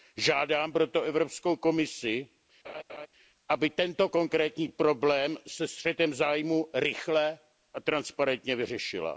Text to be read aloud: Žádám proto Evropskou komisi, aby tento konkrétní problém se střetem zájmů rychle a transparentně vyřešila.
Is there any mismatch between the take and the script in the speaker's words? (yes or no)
no